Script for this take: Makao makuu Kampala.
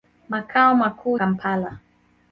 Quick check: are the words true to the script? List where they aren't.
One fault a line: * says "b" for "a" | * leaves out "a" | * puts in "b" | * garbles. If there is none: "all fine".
all fine